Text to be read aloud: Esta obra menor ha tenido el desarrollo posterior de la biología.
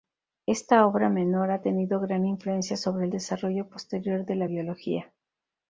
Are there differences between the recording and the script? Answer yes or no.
yes